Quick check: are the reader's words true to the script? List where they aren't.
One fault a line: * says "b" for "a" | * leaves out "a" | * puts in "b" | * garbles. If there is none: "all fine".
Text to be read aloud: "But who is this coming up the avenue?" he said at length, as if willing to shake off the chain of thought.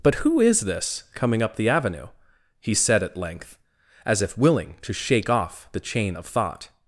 all fine